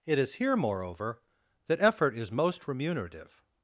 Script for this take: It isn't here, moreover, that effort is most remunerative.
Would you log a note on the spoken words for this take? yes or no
yes